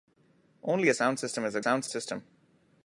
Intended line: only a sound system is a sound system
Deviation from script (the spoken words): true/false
false